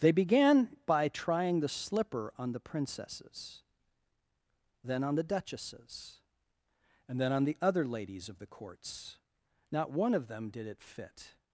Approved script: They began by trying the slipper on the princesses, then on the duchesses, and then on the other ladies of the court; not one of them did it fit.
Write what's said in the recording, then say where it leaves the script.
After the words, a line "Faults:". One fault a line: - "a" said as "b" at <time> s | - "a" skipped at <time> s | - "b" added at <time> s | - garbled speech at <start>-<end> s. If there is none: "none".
They began by trying the slipper on the princesses, then on the duchesses, and then on the other ladies of the courts; not one of them did it fit.
Faults:
- "court" said as "courts" at 8.5 s